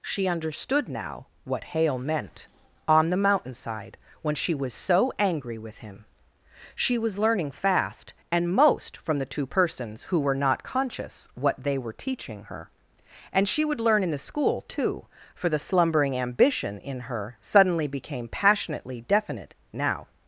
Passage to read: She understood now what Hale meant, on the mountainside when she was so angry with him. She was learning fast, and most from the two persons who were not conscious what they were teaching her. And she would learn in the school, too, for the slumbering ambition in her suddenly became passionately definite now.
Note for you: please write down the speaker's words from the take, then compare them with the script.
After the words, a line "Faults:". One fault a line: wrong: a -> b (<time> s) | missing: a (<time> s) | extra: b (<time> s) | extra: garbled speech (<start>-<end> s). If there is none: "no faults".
She understood now what Hale meant, on the mountainside when she was so angry with him. She was learning fast, and most from the two persons who were not conscious what they were teaching her. And she would learn in the school, too, for the slumbering ambition in her suddenly became passionately definite now.
Faults:
no faults